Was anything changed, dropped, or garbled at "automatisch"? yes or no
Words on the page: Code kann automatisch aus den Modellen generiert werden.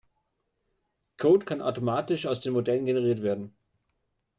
no